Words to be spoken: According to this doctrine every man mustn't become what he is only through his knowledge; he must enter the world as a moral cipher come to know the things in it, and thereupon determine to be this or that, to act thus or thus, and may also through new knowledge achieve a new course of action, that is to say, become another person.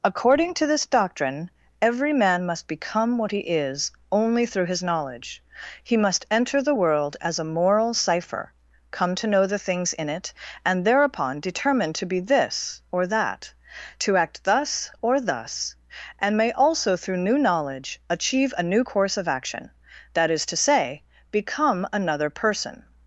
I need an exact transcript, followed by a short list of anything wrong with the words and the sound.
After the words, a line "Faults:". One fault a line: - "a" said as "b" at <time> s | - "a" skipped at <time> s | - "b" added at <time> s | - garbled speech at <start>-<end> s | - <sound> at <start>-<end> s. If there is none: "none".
According to this doctrine every man must become what he is only through his knowledge; he must enter the world as a moral cipher come to know the things in it, and thereupon determine to be this or that, to act thus or thus, and may also through new knowledge achieve a new course of action, that is to say, become another person.
Faults:
- "mustn't" said as "must" at 2.4 s